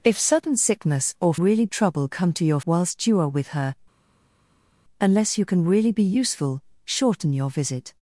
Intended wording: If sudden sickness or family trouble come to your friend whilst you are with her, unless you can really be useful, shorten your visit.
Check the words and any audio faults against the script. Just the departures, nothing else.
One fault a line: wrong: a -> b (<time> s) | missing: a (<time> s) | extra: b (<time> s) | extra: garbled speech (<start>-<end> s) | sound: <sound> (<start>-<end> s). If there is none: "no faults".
wrong: family -> really (1.4 s)
missing: friend (2.6 s)